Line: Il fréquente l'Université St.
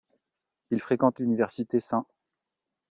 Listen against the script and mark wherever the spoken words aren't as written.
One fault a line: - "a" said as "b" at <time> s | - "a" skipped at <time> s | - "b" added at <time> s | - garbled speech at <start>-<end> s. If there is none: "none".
none